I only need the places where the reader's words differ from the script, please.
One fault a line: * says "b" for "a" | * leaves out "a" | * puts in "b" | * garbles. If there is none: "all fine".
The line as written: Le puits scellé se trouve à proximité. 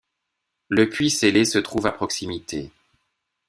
all fine